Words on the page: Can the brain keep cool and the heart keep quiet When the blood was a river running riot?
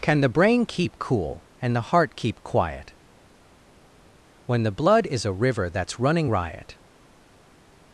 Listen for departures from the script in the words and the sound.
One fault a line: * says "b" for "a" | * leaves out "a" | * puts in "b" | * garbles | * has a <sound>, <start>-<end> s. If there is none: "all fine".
* says "is" for "was"
* puts in "that's"